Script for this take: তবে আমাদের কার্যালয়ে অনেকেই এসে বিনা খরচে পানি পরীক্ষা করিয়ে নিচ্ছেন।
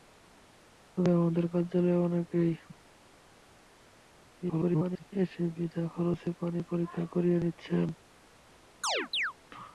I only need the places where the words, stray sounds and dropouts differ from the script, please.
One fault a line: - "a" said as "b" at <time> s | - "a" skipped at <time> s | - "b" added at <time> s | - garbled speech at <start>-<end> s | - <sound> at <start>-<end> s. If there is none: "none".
- garbled speech at 4.4-5.0 s
- chirp at 8.8-9.3 s